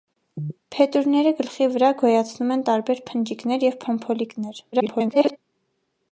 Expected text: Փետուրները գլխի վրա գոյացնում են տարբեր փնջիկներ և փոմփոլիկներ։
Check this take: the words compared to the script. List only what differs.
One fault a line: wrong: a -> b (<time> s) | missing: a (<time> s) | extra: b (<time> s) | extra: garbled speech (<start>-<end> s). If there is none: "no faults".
extra: garbled speech (4.7-5.4 s)